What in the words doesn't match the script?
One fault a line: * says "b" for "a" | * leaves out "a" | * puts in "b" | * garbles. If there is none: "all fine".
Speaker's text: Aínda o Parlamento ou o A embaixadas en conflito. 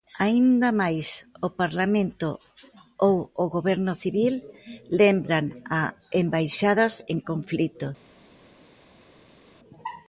* puts in "máis"
* puts in "Goberno Civil lembran"